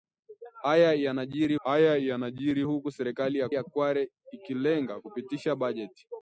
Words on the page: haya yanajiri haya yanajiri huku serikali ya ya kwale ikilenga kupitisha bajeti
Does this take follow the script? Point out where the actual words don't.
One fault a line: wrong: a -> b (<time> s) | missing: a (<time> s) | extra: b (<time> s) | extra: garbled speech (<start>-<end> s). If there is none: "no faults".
no faults